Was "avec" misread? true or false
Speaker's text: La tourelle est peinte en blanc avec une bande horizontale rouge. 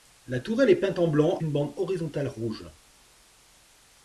true